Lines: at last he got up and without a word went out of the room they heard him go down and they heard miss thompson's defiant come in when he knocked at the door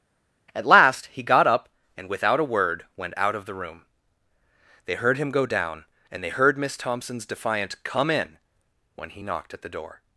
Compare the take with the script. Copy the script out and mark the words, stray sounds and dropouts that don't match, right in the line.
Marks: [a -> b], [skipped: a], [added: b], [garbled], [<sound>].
at last he got up and without a word went out of the room they heard him go down and they heard miss thompson's defiant come in when he knocked at the door